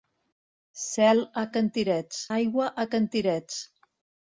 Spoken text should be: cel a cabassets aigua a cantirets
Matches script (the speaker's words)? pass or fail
fail